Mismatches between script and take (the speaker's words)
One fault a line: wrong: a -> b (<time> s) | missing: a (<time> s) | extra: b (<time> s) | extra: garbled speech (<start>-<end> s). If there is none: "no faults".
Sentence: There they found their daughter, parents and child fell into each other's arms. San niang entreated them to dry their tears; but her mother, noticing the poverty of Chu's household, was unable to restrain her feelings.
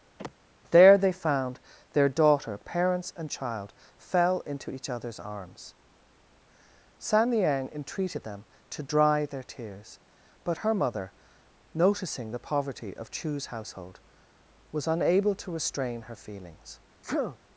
no faults